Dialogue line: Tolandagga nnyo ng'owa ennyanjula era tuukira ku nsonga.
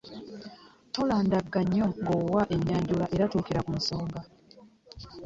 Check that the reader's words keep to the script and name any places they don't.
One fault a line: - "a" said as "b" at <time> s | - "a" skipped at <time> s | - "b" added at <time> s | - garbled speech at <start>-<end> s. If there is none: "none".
none